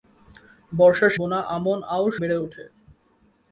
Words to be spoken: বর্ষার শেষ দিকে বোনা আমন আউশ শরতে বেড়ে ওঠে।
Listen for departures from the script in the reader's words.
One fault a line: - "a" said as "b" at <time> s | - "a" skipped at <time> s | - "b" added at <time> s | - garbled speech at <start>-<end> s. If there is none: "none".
- "শেষ দিকে" skipped at 1.1 s
- "শরতে" skipped at 2.1 s